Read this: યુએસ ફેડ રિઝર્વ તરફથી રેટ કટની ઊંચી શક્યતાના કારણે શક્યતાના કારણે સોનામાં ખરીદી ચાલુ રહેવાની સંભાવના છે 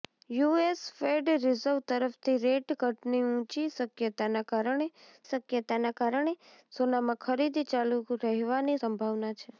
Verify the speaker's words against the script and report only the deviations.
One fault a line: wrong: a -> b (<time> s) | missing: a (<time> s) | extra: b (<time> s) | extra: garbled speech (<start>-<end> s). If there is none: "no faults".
no faults